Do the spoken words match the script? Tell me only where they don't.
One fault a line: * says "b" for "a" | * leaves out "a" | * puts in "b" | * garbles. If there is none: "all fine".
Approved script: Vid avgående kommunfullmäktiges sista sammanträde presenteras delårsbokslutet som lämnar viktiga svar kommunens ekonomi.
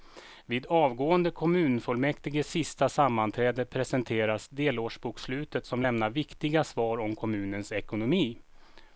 * puts in "om"